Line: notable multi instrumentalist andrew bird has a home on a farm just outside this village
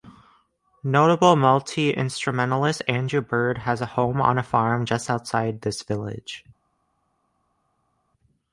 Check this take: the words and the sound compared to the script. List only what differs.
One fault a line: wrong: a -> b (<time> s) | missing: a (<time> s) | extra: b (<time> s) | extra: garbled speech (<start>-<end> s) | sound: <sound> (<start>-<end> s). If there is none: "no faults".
no faults